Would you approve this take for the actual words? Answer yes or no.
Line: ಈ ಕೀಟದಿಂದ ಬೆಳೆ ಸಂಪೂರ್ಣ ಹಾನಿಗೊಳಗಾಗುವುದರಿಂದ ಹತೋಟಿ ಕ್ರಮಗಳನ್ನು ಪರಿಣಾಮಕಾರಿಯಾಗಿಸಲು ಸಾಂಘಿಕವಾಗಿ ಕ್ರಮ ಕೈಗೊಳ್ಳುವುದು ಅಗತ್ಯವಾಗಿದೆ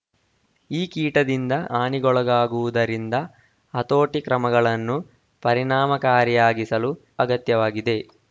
no